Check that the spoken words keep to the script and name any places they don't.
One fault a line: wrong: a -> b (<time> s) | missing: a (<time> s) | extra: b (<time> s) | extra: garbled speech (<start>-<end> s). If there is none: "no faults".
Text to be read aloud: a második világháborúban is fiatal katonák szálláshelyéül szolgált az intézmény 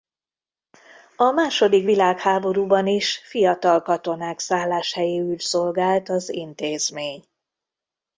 no faults